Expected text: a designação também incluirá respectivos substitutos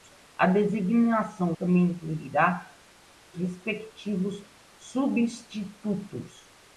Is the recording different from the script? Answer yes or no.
no